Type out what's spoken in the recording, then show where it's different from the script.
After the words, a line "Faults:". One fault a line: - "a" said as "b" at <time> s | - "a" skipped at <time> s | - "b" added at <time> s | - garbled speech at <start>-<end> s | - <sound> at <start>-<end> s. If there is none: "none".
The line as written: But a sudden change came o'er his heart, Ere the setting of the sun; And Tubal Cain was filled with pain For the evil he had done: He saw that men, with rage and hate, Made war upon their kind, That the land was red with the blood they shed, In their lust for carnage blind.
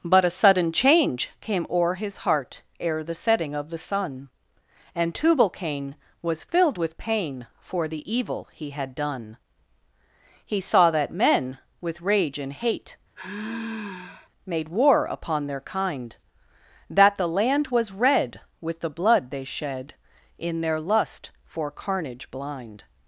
But a sudden change came o'er his heart, Ere the setting of the sun; And Tubal Cain was filled with pain For the evil he had done: He saw that men, with rage and hate, Made war upon their kind, That the land was red with the blood they shed, In their lust for carnage blind.
Faults:
- sigh at 13.2-14.3 s